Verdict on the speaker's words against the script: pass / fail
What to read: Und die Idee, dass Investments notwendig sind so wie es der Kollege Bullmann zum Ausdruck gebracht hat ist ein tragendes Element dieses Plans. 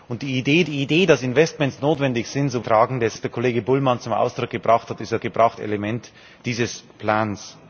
fail